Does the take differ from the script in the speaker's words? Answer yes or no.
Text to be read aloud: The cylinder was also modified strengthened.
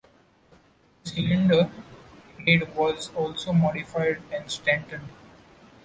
yes